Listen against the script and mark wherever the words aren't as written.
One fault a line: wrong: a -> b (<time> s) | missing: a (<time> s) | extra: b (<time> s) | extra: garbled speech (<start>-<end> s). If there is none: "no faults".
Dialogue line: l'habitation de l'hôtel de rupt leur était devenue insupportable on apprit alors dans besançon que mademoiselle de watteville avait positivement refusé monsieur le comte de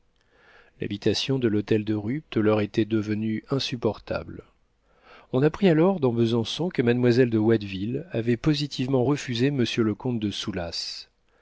no faults